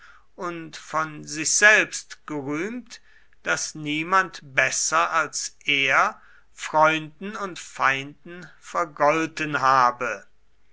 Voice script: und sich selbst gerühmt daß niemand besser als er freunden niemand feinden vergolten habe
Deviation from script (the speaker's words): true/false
true